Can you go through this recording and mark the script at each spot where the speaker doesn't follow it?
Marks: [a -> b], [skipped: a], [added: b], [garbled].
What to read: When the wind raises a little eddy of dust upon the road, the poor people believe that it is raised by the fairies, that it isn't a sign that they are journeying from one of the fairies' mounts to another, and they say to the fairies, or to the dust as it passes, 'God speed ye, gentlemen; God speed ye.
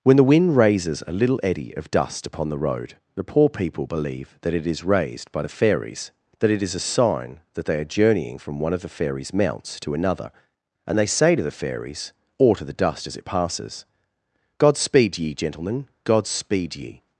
When the wind raises a little eddy of dust upon the road, the poor people believe that it is raised by the fairies, that it [isn't -> is] a sign that they are journeying from one of the fairies' mounts to another, and they say to the fairies, or to the dust as it passes, 'God speed ye, gentlemen; God speed ye.